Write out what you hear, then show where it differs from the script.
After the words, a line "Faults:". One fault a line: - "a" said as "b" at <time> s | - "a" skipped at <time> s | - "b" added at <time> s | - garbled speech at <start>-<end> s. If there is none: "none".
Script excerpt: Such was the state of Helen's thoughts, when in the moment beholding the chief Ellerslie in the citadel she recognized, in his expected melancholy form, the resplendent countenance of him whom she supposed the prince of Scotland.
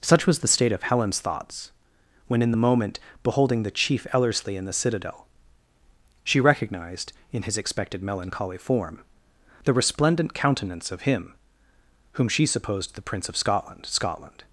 Such was the state of Helen's thoughts, when in the moment beholding the chief Ellerslie in the citadel she recognized, in his expected melancholy form, the resplendent countenance of him whom she supposed the prince of Scotland Scotland.
Faults:
- "Scotland" added at 13.9 s